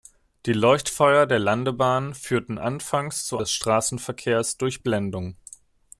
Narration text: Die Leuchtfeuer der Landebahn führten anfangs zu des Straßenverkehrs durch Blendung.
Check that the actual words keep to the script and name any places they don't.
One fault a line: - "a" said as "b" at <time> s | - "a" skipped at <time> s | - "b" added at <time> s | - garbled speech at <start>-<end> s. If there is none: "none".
none